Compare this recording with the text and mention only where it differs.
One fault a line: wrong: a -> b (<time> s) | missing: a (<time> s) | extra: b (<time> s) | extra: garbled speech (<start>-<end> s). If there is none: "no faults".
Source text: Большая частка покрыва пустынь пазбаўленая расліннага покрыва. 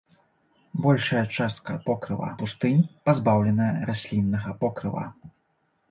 no faults